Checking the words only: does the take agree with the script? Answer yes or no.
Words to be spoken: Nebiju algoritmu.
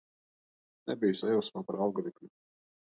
no